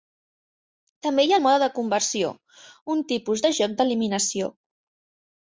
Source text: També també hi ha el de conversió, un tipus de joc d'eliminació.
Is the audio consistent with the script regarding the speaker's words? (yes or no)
no